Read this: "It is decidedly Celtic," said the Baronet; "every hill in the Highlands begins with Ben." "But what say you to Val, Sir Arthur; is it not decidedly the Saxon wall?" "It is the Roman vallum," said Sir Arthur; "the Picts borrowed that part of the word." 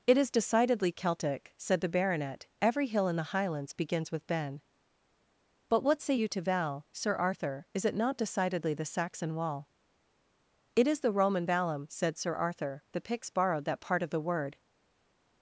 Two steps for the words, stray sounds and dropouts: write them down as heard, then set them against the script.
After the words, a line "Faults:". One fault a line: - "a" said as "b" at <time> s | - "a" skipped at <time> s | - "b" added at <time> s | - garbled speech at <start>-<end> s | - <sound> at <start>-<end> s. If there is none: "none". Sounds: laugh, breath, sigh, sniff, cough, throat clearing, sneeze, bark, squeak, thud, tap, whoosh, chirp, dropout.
"It is decidedly Celtic," said the Baronet; "every hill in the Highlands begins with Ben." "But what say you to Val, Sir Arthur; is it not decidedly the Saxon wall?" "It is the Roman vallum," said Sir Arthur; "the Picts borrowed that part of the word."
Faults:
none